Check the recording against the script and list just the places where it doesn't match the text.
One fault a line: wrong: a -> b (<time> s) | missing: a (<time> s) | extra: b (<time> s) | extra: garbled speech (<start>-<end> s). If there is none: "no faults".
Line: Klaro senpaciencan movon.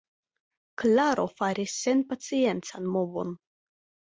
extra: faris (1.4 s)